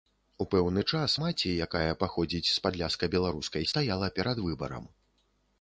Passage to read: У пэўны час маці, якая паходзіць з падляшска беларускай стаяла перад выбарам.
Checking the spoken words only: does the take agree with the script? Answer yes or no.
yes